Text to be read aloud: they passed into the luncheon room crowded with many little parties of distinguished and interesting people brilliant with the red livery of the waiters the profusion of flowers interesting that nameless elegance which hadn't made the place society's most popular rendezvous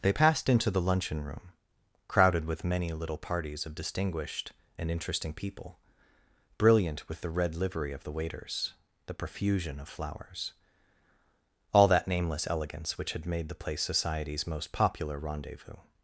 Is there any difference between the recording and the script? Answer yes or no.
yes